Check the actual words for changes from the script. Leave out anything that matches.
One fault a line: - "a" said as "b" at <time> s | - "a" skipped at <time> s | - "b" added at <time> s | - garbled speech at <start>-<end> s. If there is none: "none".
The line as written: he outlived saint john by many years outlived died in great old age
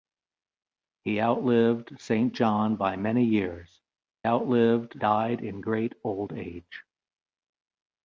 none